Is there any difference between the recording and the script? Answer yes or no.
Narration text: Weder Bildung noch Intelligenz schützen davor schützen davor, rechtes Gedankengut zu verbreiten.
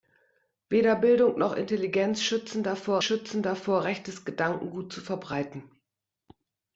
no